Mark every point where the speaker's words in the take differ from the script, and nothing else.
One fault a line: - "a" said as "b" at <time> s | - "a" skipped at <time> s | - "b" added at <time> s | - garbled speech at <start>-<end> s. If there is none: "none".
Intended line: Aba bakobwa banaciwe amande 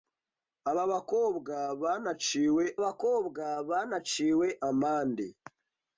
- "bakobwa banaciwe" added at 2.8 s